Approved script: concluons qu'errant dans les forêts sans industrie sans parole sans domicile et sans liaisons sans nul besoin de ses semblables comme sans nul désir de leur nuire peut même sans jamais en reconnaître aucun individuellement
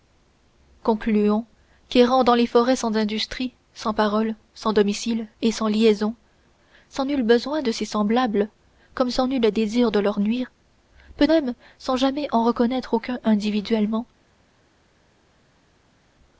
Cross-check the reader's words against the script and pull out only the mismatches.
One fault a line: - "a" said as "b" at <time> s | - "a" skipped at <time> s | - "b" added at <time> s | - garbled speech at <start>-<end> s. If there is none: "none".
none